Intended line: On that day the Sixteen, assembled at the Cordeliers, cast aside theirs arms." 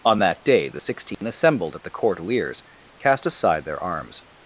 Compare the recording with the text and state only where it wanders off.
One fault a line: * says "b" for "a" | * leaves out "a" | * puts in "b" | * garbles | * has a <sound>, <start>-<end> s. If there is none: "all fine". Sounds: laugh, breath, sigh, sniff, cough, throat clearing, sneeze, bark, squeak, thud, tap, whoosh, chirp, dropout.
* has a dropout, 1.1-1.2 s
* says "their" for "theirs"